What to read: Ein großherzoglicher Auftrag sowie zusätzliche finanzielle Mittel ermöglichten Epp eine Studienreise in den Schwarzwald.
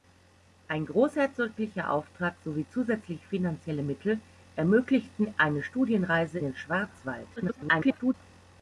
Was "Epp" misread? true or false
true